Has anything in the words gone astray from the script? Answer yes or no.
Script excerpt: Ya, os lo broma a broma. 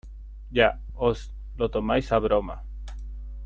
yes